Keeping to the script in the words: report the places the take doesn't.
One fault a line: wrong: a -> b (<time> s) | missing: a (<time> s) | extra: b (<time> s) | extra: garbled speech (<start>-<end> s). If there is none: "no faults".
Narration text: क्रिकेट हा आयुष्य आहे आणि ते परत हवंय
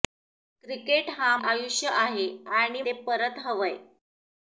no faults